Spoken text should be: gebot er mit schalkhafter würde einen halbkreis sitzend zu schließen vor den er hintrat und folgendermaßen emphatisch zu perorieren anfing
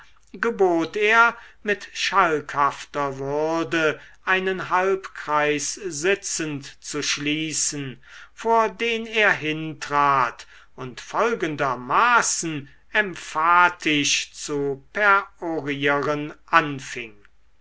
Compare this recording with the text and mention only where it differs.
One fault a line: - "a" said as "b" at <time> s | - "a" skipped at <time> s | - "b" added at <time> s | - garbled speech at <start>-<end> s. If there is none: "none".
none